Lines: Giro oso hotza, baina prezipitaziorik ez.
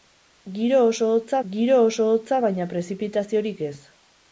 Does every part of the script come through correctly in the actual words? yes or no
no